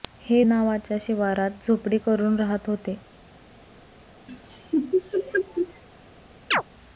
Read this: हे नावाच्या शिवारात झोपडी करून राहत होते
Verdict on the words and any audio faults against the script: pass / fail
fail